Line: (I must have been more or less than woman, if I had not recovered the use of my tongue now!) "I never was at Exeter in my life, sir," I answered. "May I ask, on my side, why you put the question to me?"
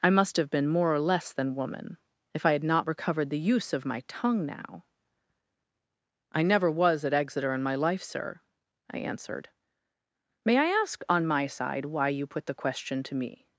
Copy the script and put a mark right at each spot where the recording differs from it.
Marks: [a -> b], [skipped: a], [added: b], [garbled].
(I must have been more or less than woman, if I had not recovered the use of my tongue now!) "I never was at Exeter in my life, sir," I answered. "May I ask, on my side, why you put the question to me?"